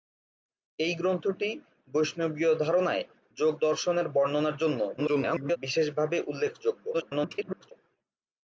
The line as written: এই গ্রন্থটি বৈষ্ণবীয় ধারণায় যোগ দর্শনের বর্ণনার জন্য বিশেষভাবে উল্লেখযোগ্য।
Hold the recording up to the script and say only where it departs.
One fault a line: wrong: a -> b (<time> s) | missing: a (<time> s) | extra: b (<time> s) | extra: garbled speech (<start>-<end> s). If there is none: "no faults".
extra: garbled speech (5.0-5.6 s)
extra: garbled speech (6.9-7.7 s)